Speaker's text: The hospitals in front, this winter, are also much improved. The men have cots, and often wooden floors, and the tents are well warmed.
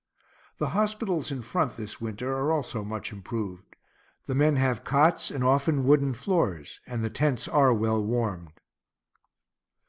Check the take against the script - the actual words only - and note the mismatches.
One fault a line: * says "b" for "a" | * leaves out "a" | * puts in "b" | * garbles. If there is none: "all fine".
all fine